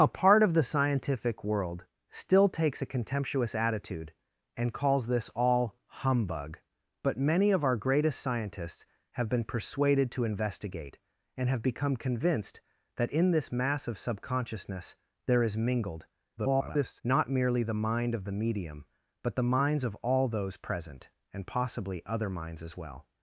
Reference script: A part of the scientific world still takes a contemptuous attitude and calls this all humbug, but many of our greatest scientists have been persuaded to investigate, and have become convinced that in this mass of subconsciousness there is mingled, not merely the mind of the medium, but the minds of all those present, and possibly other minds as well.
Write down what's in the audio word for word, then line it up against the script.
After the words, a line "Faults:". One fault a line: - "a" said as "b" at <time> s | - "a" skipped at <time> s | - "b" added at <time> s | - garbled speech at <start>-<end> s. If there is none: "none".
A part of the scientific world still takes a contemptuous attitude and calls this all humbug, but many of our greatest scientists have been persuaded to investigate, and have become convinced that in this mass of subconsciousness there is mingled, [garbled] not merely the mind of the medium, but the minds of all those present, and possibly other minds as well.
Faults:
- garbled speech at 16.4-17.0 s